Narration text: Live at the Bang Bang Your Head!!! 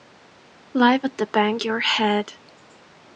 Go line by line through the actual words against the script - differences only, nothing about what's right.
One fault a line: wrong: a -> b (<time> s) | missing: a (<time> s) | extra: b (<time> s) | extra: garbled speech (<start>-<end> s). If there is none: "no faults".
missing: Bang (1.6 s)